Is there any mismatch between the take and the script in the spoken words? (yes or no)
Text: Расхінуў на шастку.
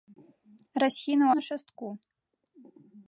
no